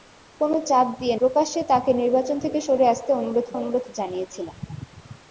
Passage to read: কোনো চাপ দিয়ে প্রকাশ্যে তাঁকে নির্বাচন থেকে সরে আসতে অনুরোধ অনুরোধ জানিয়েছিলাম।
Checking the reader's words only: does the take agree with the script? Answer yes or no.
yes